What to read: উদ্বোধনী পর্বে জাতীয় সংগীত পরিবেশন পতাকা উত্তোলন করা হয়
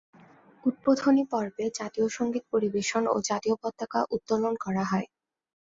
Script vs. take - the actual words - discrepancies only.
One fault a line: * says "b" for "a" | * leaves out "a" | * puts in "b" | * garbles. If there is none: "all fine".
* puts in "ও জাতীয়"